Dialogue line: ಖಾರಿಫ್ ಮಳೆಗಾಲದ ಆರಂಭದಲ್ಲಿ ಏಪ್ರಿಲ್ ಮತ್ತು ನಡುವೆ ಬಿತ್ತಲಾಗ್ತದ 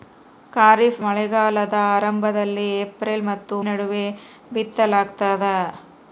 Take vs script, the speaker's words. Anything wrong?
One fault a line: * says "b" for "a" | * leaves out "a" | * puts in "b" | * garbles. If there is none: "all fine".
all fine